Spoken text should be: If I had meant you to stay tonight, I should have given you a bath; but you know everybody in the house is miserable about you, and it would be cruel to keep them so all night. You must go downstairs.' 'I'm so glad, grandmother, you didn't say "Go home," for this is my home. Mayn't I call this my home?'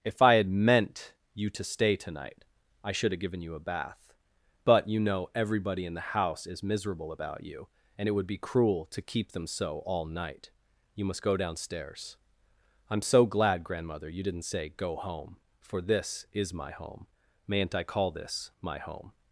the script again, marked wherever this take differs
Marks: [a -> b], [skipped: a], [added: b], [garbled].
If I had meant you to stay tonight, I should have given you a bath; but you know everybody in the house is miserable about you, and it would be cruel to keep them so all night. You must go downstairs.' 'I'm so glad, grandmother, you didn't say "Go home," for this is my home. Mayn't I call this my home?'